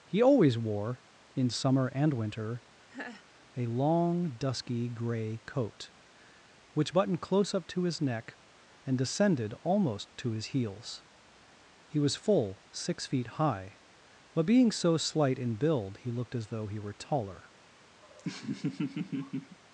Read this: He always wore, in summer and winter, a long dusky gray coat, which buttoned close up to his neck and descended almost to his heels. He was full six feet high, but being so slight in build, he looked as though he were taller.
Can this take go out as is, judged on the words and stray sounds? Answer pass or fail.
fail